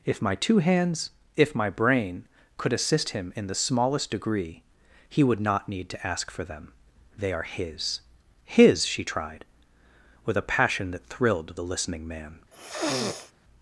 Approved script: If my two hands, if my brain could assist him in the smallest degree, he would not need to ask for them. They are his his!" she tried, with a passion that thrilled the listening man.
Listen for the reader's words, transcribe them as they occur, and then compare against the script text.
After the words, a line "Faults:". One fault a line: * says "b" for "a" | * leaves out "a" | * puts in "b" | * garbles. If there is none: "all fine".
If my two hands, if my brain could assist him in the smallest degree, he would not need to ask for them. They are his his!" she tried, with a passion that thrilled the listening man.
Faults:
all fine